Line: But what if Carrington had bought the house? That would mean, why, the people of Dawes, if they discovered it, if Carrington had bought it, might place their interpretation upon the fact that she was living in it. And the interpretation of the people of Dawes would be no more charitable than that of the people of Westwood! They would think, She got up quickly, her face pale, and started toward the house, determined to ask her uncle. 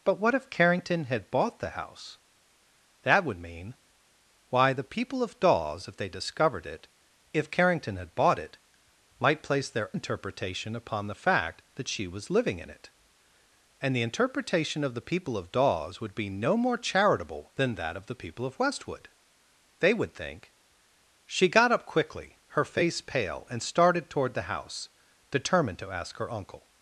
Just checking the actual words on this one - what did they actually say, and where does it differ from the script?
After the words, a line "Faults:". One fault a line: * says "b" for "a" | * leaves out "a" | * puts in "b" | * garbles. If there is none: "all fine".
But what if Carrington had bought the house? That would mean, why, the people of Dawes, if they discovered it, if Carrington had bought it, might place their interpretation upon the fact that she was living in it. And the interpretation of the people of Dawes would be no more charitable than that of the people of Westwood! They would think, She got up quickly, her face pale, and started toward the house, determined to ask her uncle.
Faults:
all fine